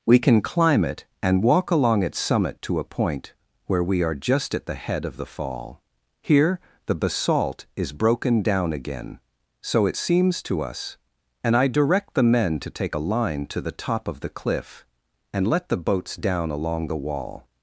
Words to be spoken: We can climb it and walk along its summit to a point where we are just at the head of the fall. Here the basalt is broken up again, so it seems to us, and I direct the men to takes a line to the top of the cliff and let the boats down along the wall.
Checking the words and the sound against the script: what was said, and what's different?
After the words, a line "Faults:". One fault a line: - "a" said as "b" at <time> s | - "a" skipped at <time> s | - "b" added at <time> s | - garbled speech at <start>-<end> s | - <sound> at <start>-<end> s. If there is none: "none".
We can climb it and walk along its summit to a point where we are just at the head of the fall. Here the basalt is broken down again, so it seems to us, and I direct the men to take a line to the top of the cliff and let the boats down along the wall.
Faults:
- "up" said as "down" at 8.4 s
- "takes" said as "take" at 12.7 s